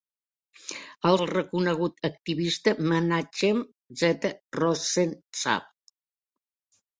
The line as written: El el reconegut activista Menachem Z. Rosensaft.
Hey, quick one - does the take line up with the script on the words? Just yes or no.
yes